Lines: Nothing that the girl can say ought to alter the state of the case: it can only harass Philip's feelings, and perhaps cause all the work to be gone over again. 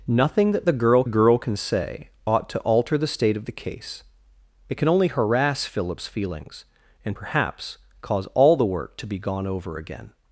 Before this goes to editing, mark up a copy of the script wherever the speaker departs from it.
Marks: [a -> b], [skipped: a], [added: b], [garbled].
Nothing that the girl [added: girl] can say ought to alter the state of the case: it can only harass Philip's feelings, and perhaps cause all the work to be gone over again.